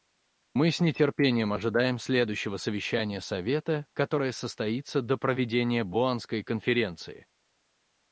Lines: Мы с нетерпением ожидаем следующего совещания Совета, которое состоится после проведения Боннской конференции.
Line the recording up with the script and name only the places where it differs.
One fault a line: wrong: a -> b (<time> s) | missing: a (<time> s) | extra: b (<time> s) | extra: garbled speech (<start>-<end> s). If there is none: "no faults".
wrong: после -> до (5.0 s)